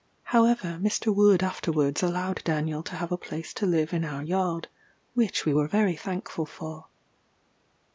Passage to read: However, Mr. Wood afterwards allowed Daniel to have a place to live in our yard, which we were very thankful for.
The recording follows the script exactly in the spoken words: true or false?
true